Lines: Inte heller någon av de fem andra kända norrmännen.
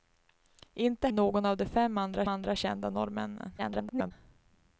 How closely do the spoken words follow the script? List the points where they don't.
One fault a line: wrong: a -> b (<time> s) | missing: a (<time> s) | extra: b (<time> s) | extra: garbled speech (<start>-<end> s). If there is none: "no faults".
missing: heller (1.1 s)
extra: andra (2.3 s)
extra: garbled speech (3.6-4.1 s)